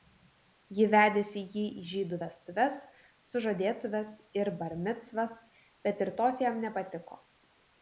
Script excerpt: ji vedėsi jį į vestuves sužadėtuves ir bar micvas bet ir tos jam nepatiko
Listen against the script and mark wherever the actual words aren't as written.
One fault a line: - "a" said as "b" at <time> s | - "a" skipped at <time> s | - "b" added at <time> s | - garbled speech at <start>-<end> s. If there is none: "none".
- "žydų" added at 1.9 s